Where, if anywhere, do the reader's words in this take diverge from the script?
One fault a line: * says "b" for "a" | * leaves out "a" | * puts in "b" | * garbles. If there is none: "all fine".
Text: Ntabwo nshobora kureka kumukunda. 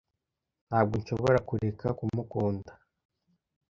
all fine